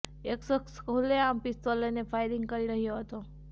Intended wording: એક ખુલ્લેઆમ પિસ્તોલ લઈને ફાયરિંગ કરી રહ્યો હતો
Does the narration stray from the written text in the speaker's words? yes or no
yes